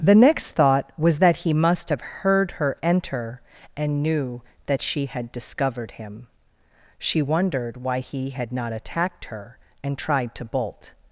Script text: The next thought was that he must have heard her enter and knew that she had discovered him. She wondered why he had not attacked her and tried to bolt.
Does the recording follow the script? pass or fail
pass